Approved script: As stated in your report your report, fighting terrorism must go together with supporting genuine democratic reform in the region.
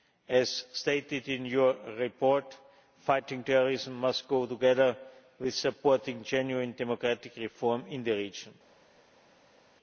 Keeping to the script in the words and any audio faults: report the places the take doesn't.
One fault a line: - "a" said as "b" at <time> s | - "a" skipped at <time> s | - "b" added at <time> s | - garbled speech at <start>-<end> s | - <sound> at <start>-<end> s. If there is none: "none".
- "your report" skipped at 2.6 s